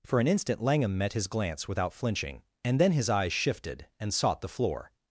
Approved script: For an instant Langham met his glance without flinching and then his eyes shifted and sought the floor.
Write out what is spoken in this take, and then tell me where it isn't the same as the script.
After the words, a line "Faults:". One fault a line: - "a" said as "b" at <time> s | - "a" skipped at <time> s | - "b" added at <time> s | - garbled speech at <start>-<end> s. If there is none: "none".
For an instant Langham met his glance without flinching and then his eyes shifted and sought the floor.
Faults:
none